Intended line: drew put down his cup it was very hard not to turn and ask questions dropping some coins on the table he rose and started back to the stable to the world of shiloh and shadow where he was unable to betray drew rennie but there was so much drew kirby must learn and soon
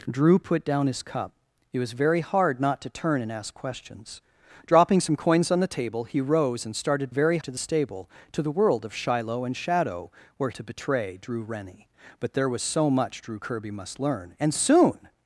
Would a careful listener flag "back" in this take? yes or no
yes